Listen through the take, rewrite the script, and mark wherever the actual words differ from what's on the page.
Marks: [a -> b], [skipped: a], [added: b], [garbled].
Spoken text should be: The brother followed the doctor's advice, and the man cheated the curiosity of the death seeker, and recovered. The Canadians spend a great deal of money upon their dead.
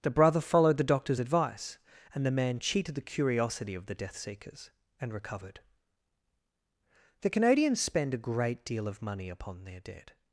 The brother followed the doctor's advice, and the man cheated the curiosity of the death [seeker, -> seekers] and recovered. The Canadians spend a great deal of money upon their dead.